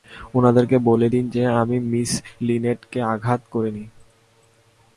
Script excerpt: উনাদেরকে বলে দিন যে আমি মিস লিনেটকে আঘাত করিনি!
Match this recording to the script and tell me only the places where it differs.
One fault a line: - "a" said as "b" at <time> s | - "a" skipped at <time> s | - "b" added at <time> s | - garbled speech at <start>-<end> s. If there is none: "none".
none